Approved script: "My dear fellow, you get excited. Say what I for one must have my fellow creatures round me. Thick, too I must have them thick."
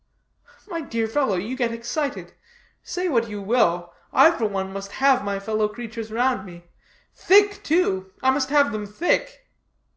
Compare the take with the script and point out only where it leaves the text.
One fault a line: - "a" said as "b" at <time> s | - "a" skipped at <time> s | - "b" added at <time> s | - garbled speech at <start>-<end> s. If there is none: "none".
- "you will" added at 3.3 s